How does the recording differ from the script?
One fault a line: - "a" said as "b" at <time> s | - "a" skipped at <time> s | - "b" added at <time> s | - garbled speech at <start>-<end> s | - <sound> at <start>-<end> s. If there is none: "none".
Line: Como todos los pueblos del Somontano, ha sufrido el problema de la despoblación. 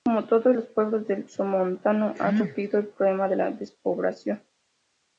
none